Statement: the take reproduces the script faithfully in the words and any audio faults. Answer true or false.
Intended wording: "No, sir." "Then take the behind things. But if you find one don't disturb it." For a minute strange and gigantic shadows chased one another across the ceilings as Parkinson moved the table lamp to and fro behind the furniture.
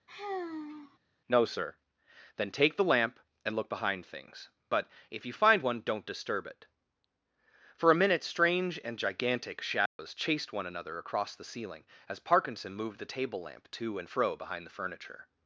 false